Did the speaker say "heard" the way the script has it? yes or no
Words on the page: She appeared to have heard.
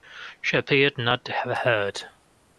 yes